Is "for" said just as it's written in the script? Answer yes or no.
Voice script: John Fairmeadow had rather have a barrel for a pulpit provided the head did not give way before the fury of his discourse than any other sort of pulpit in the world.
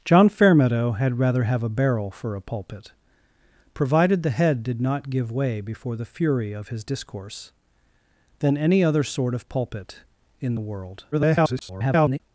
yes